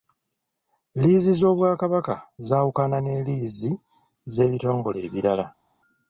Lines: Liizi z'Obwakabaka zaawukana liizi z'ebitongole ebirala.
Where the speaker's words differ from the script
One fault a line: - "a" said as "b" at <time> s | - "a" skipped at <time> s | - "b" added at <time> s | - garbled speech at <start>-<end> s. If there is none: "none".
- "ne" added at 3.0 s